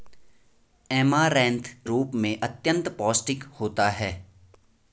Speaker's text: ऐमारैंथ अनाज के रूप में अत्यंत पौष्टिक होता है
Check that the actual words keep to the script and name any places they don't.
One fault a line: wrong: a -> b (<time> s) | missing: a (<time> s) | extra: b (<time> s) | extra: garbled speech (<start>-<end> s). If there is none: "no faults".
missing: अनाज के (1.7 s)